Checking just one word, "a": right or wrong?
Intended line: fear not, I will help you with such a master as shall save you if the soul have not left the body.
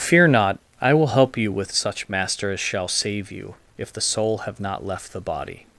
wrong